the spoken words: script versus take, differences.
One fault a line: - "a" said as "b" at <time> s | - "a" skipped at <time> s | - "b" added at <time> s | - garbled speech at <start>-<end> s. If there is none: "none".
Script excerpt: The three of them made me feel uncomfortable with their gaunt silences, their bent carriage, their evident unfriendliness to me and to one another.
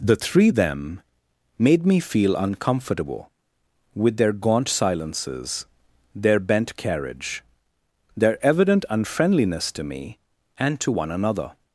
- "of" skipped at 0.5 s